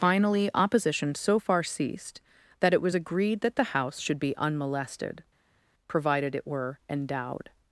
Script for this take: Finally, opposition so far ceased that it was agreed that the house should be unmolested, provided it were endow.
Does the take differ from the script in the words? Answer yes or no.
yes